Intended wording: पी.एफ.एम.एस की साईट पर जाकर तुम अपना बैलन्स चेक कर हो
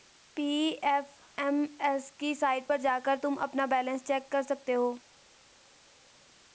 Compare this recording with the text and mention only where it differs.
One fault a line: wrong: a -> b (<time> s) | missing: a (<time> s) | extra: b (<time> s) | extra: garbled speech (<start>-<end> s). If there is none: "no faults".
extra: सकते (4.4 s)